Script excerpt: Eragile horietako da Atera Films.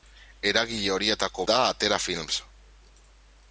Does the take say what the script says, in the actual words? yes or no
yes